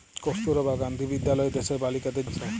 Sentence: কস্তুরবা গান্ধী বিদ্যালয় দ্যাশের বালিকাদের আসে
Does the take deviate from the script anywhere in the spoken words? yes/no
no